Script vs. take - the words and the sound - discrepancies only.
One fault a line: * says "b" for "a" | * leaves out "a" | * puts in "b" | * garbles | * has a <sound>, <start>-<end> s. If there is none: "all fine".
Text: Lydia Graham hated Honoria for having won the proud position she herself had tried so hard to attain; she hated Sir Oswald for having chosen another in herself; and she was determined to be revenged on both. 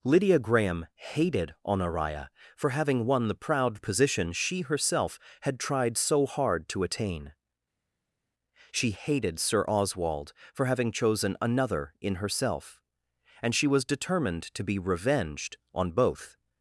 all fine